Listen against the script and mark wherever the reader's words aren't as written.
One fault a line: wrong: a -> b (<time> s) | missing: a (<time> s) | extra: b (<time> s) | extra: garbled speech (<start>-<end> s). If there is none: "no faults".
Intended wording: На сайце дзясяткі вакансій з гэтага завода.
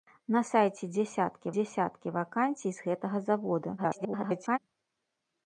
extra: дзясяткі (1.5 s)
extra: garbled speech (3.8-4.6 s)